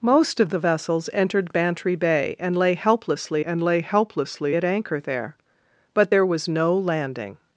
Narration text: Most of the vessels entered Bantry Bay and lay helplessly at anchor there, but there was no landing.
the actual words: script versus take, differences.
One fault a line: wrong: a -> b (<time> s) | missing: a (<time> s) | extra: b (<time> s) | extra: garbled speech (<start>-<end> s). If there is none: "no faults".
extra: and lay helplessly (3.4 s)